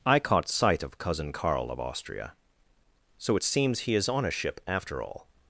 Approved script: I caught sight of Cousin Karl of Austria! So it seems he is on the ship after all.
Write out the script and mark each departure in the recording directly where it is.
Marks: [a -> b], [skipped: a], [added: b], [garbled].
I caught sight of Cousin Karl of Austria! So it seems he is on [the -> a] ship after all.